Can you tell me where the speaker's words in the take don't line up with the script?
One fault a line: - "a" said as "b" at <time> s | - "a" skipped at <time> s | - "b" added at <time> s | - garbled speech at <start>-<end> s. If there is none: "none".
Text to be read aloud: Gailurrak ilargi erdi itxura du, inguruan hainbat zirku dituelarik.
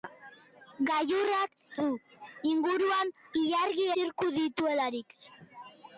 - "ilargi erdi itxura" skipped at 1.5 s
- "hainbat" said as "ilargi" at 3.4 s